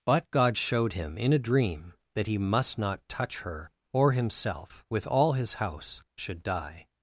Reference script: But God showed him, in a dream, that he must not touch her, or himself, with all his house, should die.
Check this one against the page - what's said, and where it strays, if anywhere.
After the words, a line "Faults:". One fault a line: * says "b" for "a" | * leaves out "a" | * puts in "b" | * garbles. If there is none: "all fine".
But God showed him, in a dream, that he must not touch her, or himself, with all his house, should die.
Faults:
all fine